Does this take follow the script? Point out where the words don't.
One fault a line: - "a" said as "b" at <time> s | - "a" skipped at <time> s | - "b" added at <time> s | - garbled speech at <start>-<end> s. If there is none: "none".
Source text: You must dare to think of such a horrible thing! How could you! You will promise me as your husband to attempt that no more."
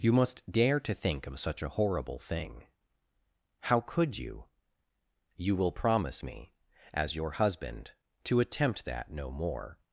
none